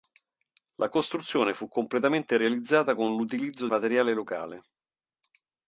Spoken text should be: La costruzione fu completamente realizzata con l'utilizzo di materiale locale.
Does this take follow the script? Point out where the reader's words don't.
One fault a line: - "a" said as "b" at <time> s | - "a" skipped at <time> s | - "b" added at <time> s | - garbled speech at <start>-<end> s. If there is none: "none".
- "di" skipped at 3.7 s